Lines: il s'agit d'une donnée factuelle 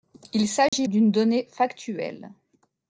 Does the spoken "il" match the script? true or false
true